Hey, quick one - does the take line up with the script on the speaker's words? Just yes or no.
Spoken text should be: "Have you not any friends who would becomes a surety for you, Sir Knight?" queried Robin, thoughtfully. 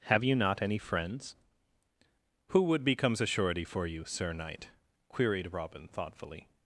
yes